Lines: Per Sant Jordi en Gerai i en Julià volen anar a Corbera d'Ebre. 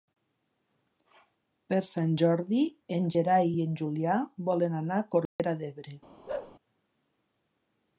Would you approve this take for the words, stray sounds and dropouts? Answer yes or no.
no